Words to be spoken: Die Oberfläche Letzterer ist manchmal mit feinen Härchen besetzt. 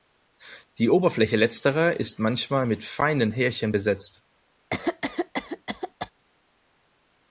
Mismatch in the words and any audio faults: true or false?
true